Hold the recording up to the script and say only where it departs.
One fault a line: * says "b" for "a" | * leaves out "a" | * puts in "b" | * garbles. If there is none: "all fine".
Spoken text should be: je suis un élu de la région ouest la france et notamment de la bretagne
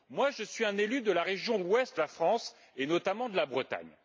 all fine